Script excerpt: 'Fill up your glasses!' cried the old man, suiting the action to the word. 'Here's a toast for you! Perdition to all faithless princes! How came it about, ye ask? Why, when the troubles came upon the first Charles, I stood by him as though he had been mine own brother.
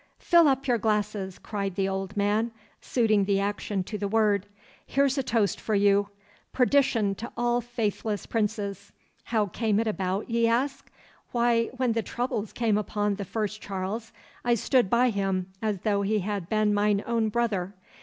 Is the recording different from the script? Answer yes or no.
no